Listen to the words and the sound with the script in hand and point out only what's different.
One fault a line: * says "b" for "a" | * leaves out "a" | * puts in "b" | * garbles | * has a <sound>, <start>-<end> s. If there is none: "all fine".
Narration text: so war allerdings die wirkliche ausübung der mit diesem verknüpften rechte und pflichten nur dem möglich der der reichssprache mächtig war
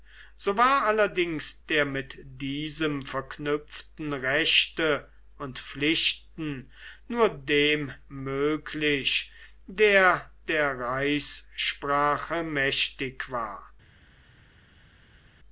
* leaves out "die wirkliche ausübung"